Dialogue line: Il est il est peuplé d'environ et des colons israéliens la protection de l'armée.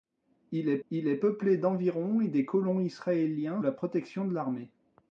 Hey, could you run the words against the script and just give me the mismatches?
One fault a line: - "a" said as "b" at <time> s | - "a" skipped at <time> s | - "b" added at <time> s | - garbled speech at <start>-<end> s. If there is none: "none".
none